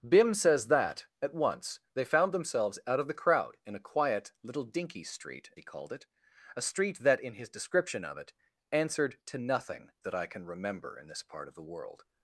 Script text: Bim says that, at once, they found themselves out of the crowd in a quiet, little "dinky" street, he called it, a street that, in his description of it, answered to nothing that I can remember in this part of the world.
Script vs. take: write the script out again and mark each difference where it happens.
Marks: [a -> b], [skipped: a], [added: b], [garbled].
Bim says that, at once, they found themselves out of the crowd in a quiet, little "dinky" street, he called it, a street that, in his description of it, answered to nothing that I can remember in this part of the world.